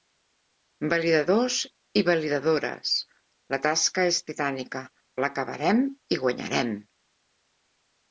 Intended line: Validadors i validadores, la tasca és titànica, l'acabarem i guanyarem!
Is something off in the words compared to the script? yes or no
no